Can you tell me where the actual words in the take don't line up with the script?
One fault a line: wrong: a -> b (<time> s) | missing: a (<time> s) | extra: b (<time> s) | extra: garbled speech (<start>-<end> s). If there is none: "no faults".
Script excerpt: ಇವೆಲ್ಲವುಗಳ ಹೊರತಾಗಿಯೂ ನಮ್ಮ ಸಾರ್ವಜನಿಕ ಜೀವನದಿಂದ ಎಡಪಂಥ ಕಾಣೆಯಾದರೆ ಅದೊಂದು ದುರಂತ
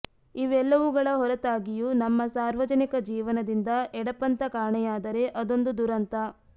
no faults